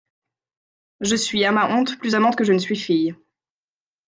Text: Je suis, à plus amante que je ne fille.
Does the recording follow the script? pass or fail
fail